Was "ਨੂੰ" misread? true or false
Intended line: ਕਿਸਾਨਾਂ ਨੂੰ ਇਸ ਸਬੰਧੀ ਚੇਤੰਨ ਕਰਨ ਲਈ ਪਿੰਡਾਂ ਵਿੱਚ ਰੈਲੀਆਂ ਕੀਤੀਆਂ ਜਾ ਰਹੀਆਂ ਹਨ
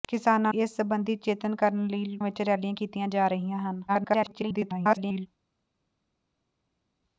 true